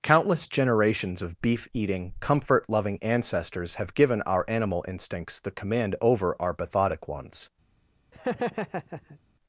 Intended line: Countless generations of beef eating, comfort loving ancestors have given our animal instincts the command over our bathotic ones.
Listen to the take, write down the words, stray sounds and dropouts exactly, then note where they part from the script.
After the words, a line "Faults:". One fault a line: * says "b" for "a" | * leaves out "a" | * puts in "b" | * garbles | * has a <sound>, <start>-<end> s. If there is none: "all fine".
Countless generations of beef eating, comfort loving ancestors have given our animal instincts the command over our bathotic ones.
Faults:
* has a laugh, 8.1-9.2 s